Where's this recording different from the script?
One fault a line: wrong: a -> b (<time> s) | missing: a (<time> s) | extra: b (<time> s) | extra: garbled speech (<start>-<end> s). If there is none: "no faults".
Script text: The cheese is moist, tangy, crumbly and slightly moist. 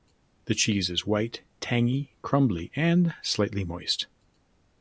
wrong: moist -> white (1.1 s)